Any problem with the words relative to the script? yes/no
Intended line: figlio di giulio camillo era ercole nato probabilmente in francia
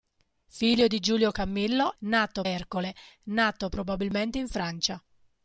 yes